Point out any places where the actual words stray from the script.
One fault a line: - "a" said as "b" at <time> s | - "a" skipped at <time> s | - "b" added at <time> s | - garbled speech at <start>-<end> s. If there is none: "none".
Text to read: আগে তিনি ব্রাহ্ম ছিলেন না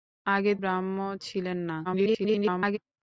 - "তিনি" skipped at 0.5 s
- garbled speech at 1.8-2.8 s